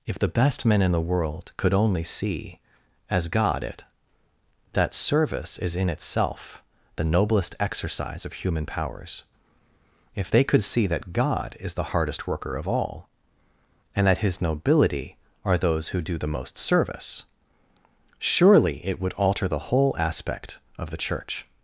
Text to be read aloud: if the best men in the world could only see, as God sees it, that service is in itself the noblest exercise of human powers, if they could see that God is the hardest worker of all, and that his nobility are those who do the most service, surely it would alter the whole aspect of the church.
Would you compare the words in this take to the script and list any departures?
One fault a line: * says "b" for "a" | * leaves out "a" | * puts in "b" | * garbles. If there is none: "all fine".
* leaves out "sees"